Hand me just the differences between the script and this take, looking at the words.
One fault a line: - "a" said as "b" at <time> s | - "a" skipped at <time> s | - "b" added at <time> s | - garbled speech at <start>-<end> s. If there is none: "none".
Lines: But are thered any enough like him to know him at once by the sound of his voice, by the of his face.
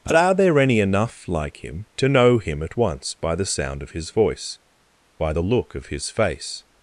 - "thered" said as "there" at 0.3 s
- "look" added at 5.4 s